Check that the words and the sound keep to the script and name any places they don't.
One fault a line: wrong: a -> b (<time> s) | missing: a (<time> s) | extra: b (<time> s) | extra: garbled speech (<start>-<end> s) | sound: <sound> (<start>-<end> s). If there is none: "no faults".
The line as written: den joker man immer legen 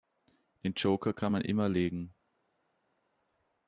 extra: kann (1.1 s)